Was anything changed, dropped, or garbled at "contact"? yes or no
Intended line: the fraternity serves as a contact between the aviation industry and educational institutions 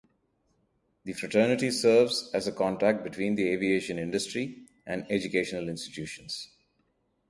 no